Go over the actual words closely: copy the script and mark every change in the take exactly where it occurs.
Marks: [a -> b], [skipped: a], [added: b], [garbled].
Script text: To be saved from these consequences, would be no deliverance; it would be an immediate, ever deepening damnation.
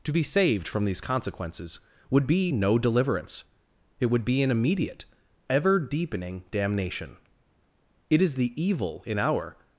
To be saved from these consequences, would be no deliverance; it would be an immediate, ever deepening damnation. [added: It is the evil in our]